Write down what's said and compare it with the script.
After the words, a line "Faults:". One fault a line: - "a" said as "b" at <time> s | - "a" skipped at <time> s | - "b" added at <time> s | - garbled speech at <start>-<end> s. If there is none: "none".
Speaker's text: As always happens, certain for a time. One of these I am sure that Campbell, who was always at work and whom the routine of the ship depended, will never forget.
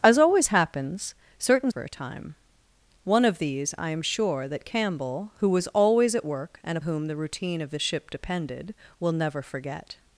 As always happens, certain for a time. One of these I am sure that Campbell, who was always at work and whom the routine of the ship depended, will never forget.
Faults:
none